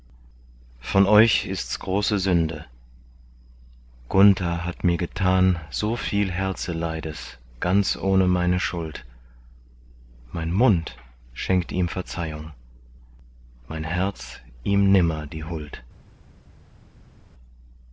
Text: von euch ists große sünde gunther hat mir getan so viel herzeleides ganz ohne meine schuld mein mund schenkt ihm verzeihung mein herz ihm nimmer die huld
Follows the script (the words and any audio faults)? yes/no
yes